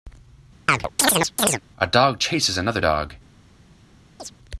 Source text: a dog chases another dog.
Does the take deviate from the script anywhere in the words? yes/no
no